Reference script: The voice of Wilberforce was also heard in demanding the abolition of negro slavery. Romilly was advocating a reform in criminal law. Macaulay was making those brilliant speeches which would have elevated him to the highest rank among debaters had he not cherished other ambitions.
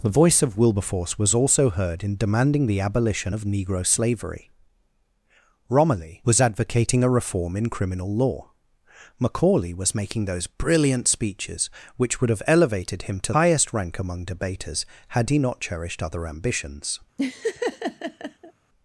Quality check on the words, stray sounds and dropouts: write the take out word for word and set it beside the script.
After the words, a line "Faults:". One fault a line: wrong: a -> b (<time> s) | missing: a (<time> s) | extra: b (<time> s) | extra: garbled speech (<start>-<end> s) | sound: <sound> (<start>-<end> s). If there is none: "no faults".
The voice of Wilberforce was also heard in demanding the abolition of negro slavery. Romilly was advocating a reform in criminal law. Macaulay was making those brilliant speeches which would have elevated him to highest rank among debaters had he not cherished other ambitions.
Faults:
missing: the (13.3 s)
sound: laugh (17.2-18.5 s)